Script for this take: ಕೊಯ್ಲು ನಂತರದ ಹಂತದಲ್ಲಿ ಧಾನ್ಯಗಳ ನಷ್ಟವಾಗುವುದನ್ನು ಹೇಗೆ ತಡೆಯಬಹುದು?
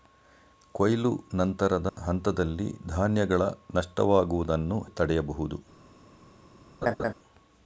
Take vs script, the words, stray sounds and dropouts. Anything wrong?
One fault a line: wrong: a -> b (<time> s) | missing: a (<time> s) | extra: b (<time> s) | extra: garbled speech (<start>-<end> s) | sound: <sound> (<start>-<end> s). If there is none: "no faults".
sound: dropout (1.9-2.0 s)
missing: ಹೇಗೆ (4.8 s)
sound: laugh (6.8-7.1 s)